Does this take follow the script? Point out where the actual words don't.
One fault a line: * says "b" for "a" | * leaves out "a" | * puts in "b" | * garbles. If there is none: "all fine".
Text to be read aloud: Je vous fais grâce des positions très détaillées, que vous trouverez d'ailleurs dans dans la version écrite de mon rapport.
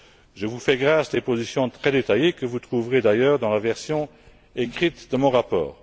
* leaves out "dans"